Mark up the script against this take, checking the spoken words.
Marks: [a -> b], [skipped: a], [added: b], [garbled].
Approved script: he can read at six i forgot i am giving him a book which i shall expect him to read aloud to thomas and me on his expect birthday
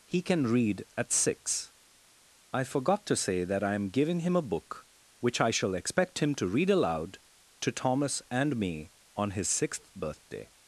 he can read at six i forgot [added: to say that] i am giving him a book which i shall expect him to read aloud to thomas and me on his [expect -> sixth] birthday